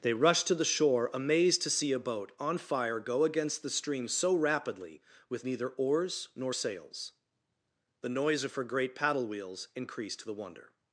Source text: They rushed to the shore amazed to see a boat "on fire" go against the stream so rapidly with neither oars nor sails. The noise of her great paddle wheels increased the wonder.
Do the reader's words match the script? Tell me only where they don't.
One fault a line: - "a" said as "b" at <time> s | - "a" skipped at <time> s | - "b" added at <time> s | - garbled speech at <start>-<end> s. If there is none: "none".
none